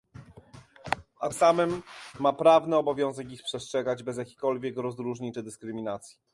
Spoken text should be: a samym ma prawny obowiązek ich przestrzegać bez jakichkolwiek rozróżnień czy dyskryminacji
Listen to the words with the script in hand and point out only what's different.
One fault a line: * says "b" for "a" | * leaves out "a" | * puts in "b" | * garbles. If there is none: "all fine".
all fine